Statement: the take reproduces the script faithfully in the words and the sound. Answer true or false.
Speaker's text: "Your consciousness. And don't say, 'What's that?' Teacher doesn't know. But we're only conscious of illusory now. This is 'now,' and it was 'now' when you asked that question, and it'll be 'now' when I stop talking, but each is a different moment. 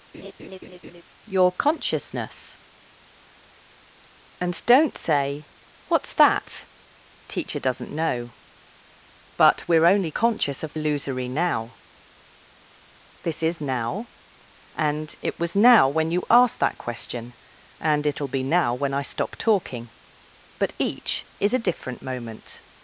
false